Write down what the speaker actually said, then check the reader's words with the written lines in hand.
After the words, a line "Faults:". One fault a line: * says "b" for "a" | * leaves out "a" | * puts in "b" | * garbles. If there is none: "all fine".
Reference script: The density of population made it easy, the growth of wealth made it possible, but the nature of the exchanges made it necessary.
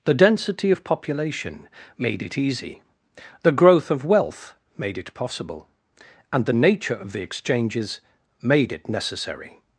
The density of population made it easy, the growth of wealth made it possible, and the nature of the exchanges made it necessary.
Faults:
* says "and" for "but"